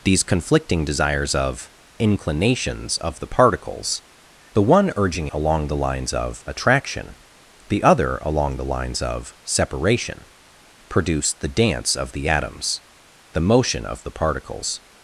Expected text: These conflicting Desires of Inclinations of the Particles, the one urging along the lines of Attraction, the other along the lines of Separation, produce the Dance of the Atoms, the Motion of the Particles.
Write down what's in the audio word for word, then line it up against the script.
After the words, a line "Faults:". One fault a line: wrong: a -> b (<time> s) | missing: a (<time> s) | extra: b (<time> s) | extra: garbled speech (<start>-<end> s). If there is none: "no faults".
These conflicting Desires of Inclinations of the Particles, the one urging along the lines of Attraction, the other along the lines of Separation, produce the Dance of the Atoms, the Motion of the Particles.
Faults:
no faults